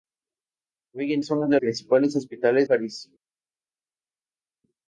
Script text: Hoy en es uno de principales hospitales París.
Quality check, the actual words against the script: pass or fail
pass